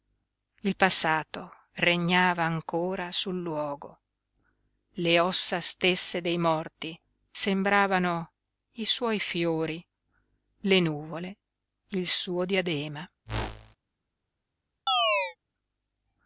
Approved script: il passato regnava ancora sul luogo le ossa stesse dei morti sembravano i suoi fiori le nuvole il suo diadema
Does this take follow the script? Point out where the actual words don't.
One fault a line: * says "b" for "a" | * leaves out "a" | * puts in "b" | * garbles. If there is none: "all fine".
all fine